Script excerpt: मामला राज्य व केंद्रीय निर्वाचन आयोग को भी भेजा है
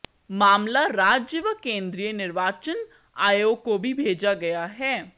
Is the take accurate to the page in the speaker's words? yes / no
no